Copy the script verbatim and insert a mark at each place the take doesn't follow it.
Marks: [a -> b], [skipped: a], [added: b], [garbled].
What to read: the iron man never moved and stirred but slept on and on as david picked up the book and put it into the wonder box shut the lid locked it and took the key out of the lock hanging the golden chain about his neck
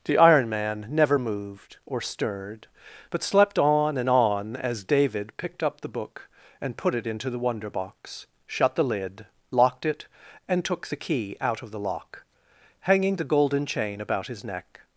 the iron man never moved [and -> or] stirred but slept on and on as david picked up the book and put it into the wonder box shut the lid locked it and took the key out of the lock hanging the golden chain about his neck